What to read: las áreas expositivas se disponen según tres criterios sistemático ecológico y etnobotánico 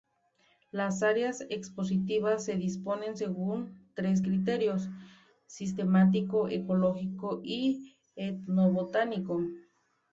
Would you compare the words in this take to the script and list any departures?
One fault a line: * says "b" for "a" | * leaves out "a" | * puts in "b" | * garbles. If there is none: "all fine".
all fine